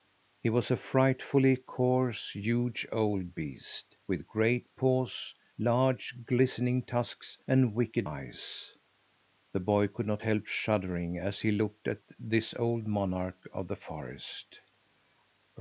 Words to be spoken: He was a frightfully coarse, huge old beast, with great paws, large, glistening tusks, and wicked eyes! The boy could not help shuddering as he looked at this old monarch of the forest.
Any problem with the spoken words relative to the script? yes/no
no